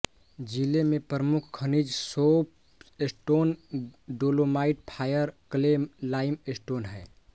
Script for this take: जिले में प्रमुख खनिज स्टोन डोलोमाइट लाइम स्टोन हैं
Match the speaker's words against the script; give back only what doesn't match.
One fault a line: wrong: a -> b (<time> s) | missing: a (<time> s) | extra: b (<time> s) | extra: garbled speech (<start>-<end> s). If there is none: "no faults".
extra: सोप (1.9 s)
extra: फायर क्ले (4.9 s)